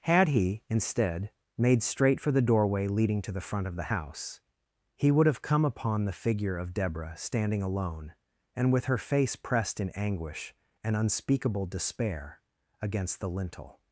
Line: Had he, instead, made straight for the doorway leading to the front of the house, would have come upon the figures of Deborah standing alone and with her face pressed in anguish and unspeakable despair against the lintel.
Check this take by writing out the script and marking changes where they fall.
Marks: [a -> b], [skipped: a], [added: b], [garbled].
Had he, instead, made straight for the doorway leading to the front of the house, [added: he] would have come upon the [figures -> figure] of Deborah standing alone and with her face pressed in anguish and unspeakable despair against the lintel.